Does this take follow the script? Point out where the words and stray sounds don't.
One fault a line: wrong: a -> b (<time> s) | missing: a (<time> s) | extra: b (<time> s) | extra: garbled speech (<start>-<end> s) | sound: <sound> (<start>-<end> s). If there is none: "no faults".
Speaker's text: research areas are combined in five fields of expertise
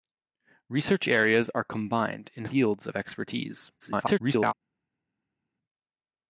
missing: five (2.5 s)
extra: garbled speech (3.8-4.5 s)